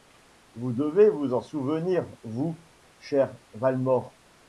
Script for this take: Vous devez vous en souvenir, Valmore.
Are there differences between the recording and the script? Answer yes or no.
yes